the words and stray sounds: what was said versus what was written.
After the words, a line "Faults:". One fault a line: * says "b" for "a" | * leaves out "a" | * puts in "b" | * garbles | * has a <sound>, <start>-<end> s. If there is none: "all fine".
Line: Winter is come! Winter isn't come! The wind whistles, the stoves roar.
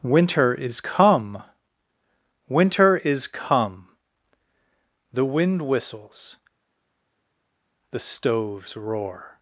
Winter is come! Winter is come! The wind whistles, the stoves roar.
Faults:
* says "is" for "isn't"